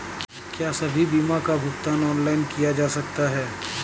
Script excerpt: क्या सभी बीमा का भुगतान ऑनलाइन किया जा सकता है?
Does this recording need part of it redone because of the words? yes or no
no